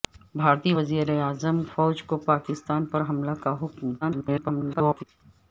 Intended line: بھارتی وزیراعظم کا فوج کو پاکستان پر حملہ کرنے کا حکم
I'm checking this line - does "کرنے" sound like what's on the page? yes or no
no